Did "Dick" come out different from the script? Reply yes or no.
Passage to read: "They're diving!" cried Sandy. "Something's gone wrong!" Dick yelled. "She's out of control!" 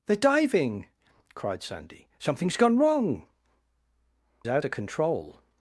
yes